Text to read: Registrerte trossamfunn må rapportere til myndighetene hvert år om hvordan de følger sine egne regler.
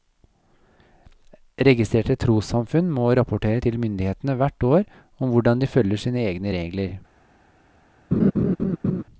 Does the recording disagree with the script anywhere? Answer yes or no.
no